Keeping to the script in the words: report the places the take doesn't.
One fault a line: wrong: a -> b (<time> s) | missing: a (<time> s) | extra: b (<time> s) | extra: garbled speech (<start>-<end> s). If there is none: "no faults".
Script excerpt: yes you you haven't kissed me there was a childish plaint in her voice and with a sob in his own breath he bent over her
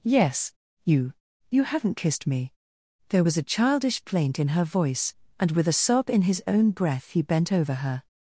no faults